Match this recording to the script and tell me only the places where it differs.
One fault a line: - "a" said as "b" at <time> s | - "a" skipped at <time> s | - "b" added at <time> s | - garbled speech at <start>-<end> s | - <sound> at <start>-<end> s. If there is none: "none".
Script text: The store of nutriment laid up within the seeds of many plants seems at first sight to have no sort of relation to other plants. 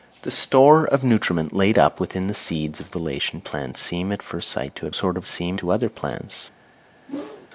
- "many" said as "relation" at 2.9 s
- "no" skipped at 4.9 s
- "relation" said as "seems" at 5.3 s
- whoosh at 7.1-7.5 s